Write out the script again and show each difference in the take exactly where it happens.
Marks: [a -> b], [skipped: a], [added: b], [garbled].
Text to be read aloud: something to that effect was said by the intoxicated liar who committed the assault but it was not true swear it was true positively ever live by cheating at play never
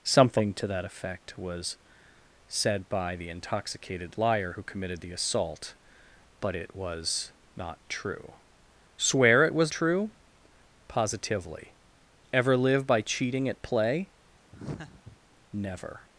something to that effect was said by the intoxicated liar who committed the assault but it was not true swear it was true positively ever live by cheating at play never